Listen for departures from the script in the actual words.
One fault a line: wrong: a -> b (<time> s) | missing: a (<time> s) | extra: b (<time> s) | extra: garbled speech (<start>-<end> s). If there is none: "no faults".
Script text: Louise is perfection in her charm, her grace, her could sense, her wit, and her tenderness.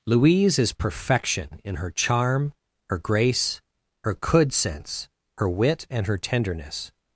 no faults